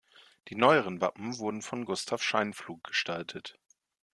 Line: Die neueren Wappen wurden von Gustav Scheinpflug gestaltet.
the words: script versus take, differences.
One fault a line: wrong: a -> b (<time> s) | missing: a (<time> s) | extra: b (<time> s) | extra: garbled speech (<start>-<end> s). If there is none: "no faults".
no faults